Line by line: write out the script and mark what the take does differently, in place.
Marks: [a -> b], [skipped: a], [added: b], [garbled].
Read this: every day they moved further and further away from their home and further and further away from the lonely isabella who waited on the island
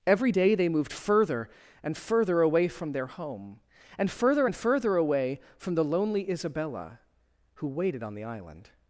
every day they moved further and further away from their home and further and further away from the lonely isabella who waited on the island